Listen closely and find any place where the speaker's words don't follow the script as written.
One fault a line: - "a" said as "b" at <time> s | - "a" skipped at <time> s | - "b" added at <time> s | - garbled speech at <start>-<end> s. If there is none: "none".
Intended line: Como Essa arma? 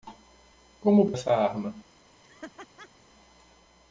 none